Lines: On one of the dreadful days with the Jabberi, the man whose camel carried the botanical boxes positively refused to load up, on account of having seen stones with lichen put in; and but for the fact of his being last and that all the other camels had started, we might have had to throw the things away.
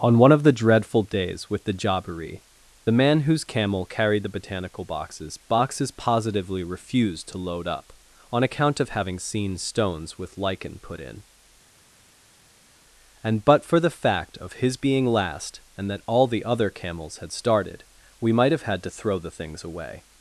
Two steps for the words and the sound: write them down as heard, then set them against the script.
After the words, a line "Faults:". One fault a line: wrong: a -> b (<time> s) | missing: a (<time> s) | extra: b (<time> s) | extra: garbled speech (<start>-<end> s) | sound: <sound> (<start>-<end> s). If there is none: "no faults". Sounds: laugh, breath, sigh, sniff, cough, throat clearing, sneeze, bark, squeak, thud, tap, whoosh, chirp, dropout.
On one of the dreadful days with the Jabberi, the man whose camel carried the botanical boxes boxes positively refused to load up, on account of having seen stones with lichen put in; and but for the fact of his being last and that all the other camels had started, we might have had to throw the things away.
Faults:
extra: boxes (5.4 s)